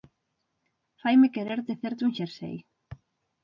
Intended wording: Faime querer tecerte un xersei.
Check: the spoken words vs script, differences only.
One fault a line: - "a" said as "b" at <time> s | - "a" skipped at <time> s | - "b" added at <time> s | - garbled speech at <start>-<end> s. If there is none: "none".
none